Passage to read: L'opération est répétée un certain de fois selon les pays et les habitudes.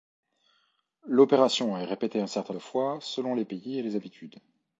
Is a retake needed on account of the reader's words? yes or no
no